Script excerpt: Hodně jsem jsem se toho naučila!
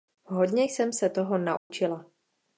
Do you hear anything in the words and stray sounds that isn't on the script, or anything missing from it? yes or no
yes